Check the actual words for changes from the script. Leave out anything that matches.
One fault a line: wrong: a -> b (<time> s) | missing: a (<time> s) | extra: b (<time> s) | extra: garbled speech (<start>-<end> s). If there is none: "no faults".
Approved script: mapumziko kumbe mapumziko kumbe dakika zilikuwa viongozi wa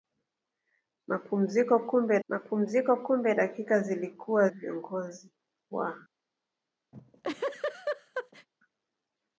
no faults